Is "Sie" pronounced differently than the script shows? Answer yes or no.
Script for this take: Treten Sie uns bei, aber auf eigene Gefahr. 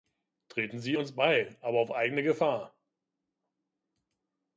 no